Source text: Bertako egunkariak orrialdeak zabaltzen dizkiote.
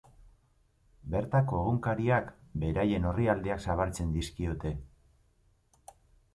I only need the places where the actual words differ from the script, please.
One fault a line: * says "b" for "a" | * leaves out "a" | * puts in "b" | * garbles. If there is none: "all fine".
* puts in "beraien"